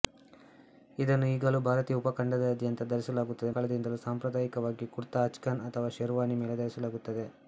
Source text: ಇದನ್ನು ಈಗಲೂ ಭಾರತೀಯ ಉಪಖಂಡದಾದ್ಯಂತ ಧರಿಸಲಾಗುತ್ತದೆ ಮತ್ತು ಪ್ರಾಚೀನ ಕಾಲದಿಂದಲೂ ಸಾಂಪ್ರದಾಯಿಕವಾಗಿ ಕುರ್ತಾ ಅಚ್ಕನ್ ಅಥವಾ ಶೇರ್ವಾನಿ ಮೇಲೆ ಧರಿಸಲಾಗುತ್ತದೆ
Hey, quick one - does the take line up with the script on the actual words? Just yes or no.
no